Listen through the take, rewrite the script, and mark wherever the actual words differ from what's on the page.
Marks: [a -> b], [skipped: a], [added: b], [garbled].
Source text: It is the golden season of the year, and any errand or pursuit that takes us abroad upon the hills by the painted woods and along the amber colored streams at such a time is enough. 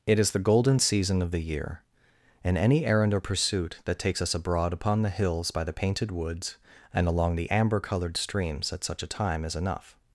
It is the golden season of the year, and any errand or pursuit that takes us abroad upon the hills by the painted woods and along the amber colored streams at such a time is enough.